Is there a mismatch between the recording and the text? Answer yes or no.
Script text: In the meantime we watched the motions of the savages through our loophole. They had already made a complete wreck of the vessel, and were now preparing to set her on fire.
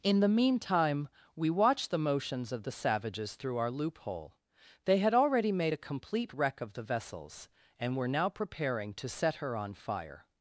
yes